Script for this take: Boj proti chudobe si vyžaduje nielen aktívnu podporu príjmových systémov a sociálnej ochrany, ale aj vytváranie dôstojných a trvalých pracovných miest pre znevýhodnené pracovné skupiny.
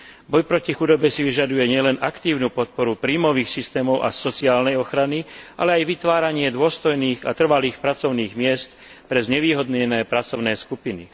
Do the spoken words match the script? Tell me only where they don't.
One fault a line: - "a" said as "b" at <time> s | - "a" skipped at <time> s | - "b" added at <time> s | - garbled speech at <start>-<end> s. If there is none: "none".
none